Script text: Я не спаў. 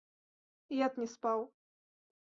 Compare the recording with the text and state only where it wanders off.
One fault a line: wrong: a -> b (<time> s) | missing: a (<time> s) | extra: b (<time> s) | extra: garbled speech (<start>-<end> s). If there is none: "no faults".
no faults